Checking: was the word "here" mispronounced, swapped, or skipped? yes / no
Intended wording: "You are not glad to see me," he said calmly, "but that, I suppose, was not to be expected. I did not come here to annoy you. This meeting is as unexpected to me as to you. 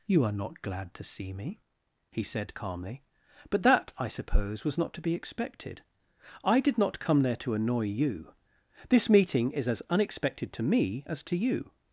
yes